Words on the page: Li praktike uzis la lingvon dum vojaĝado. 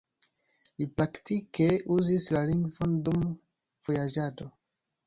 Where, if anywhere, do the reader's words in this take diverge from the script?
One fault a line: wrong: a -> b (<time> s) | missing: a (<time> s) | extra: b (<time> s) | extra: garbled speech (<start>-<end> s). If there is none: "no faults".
no faults